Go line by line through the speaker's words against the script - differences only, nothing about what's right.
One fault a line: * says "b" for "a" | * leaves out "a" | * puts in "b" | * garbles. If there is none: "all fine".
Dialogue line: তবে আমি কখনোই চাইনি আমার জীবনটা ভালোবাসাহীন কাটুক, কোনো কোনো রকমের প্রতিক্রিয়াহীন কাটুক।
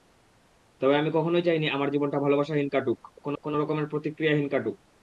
all fine